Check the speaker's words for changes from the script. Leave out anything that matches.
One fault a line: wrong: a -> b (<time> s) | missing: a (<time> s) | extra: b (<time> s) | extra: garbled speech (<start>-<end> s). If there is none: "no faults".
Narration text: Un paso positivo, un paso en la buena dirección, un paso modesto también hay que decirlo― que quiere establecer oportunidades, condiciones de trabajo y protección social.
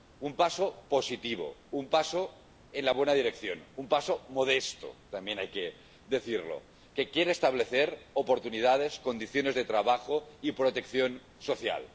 no faults